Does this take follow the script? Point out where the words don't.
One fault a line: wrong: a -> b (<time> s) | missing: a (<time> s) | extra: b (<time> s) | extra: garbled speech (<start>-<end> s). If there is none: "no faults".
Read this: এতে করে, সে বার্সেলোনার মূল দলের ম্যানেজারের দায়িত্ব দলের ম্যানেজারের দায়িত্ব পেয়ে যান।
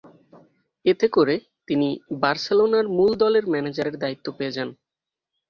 wrong: সে -> তিনি (1.7 s)
missing: দলের ম্যানেজারের দায়িত্ব (4.3 s)